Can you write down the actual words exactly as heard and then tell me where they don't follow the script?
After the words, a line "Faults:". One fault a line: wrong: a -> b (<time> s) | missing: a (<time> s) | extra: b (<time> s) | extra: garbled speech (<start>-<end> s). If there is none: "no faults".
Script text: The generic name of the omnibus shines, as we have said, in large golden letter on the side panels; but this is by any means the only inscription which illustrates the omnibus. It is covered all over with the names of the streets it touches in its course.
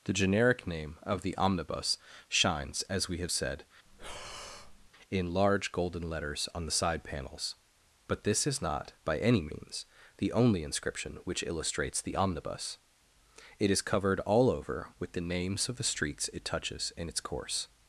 The generic name of the omnibus shines, as we have said, in large golden letters on the side panels; but this is not by any means the only inscription which illustrates the omnibus. It is covered all over with the names of the streets it touches in its course.
Faults:
wrong: letter -> letters (6.1 s)
extra: not (8.6 s)